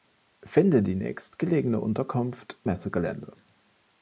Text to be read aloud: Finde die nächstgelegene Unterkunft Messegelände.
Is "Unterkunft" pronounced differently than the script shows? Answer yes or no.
no